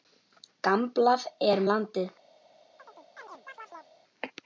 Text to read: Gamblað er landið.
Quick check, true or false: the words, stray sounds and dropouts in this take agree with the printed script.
false